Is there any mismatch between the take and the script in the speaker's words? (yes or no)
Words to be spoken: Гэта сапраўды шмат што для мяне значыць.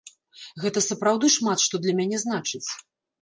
no